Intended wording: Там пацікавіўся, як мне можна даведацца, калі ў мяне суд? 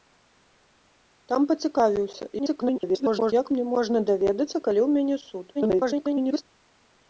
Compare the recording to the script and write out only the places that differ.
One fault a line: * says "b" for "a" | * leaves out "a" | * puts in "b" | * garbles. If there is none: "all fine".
* garbles
* garbles